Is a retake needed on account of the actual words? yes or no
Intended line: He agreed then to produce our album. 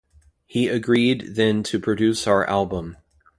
no